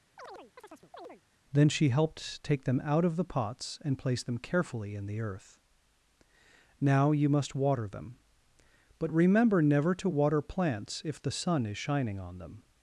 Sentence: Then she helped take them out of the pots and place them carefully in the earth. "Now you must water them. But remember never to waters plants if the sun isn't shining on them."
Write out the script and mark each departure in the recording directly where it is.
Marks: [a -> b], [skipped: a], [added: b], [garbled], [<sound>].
[chirp] Then she helped take them out of the pots and place them carefully in the earth. "Now you must water them. But remember never to [waters -> water] plants if the sun [isn't -> is] shining on them."